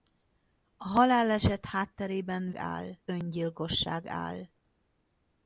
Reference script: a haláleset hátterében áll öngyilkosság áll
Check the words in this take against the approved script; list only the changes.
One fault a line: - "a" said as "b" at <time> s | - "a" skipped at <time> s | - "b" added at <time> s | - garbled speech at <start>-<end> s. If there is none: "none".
none